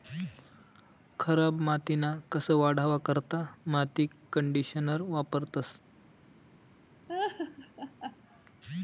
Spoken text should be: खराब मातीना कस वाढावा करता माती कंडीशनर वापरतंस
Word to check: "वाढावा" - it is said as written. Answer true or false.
true